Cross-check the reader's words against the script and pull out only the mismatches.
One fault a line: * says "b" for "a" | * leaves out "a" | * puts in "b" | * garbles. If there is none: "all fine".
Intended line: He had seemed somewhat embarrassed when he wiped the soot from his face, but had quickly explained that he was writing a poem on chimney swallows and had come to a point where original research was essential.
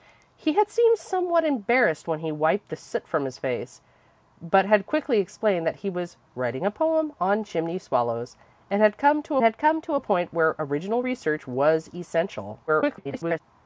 * puts in "had come to"
* garbles